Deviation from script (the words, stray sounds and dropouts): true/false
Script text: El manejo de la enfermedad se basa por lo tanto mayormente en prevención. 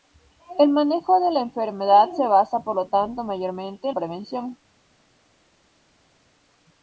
false